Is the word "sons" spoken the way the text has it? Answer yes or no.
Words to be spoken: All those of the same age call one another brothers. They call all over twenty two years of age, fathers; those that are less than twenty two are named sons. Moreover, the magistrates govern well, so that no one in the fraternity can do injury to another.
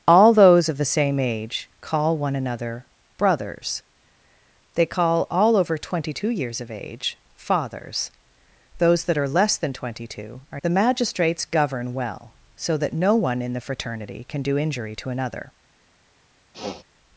no